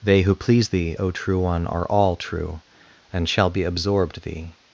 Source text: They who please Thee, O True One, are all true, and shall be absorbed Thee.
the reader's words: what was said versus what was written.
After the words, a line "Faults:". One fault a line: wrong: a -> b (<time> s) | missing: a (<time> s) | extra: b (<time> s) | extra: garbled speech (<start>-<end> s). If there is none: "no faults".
They who please Thee, O True One, are all true, and shall be absorbed Thee.
Faults:
no faults